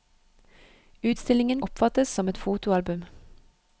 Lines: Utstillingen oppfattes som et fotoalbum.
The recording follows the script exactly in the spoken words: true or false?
true